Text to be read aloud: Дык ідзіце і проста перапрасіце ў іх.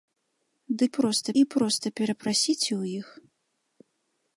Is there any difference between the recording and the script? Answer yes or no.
yes